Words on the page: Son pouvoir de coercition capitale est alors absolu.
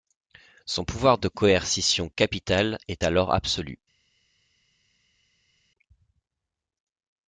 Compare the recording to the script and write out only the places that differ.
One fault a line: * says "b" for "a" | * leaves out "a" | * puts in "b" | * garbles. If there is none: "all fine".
all fine